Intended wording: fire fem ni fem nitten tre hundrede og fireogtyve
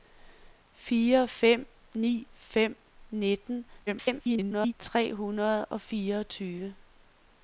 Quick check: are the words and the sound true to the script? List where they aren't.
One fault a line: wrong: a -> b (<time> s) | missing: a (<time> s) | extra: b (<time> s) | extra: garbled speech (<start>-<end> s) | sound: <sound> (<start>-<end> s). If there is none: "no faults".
extra: garbled speech (3.9-4.7 s)